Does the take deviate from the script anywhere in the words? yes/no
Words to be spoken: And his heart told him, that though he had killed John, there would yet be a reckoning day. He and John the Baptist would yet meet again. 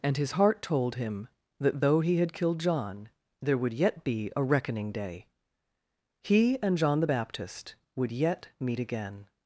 no